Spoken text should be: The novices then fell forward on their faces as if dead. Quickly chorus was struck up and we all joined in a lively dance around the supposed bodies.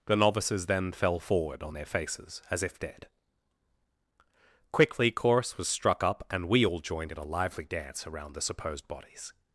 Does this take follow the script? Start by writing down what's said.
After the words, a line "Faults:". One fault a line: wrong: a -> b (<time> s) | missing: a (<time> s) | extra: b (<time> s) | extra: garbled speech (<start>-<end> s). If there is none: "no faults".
The novices then fell forward on their faces as if dead. Quickly chorus was struck up and we all joined in a lively dance around the supposed bodies.
Faults:
no faults